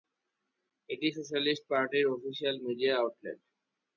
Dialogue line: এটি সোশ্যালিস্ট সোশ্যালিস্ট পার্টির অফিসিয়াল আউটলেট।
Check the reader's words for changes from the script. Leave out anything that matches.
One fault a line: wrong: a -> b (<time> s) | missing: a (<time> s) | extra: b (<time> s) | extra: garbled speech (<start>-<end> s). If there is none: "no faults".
missing: সোশ্যালিস্ট (1.6 s)
extra: মিডিয়া (2.7 s)